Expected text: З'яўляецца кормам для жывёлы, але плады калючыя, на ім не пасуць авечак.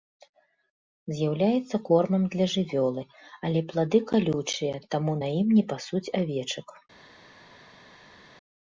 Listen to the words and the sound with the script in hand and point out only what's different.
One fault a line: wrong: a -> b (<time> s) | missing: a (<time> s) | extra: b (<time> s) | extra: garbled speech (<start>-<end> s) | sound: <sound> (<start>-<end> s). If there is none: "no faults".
extra: таму (4.9 s)